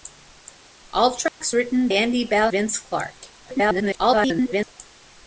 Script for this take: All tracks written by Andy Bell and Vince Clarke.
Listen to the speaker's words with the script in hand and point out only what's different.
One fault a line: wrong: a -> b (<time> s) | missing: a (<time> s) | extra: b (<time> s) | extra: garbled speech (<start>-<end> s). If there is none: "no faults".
missing: by (1.9 s)
missing: and (2.5 s)
extra: garbled speech (3.4-4.7 s)